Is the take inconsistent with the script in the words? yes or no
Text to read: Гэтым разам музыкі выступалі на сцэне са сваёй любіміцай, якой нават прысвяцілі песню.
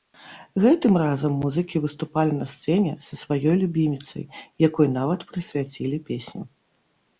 no